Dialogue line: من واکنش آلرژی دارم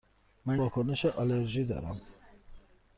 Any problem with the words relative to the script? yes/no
no